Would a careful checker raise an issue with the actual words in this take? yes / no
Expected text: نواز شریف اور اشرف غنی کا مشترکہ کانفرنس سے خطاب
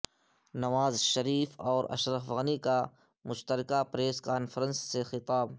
yes